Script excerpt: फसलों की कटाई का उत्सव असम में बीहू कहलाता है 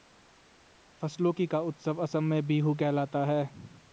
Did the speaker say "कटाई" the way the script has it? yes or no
no